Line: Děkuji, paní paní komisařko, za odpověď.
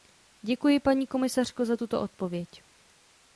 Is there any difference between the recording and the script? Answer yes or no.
yes